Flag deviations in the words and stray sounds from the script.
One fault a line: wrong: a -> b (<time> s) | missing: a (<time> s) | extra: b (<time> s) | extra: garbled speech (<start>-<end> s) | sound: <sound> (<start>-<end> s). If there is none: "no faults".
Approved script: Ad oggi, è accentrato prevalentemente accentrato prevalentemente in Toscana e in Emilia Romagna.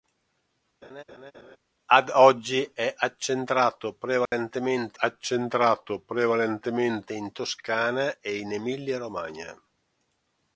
sound: laugh (0.8-1.6 s)
sound: dropout (4.3-4.3 s)